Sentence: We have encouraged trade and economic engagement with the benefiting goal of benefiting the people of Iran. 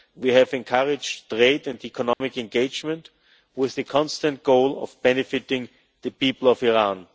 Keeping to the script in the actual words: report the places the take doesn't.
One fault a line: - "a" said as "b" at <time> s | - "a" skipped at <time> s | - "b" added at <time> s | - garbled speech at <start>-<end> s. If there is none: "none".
- "benefiting" said as "constant" at 3.8 s